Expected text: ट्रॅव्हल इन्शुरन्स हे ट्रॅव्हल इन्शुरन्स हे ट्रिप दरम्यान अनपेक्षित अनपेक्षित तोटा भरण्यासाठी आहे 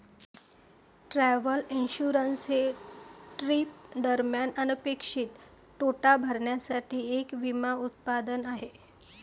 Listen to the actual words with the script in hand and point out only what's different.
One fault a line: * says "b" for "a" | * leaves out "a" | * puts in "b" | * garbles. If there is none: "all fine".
* leaves out "ट्रॅव्हल इन्शुरन्स हे"
* leaves out "अनपेक्षित"
* puts in "एक विमा उत्पादन"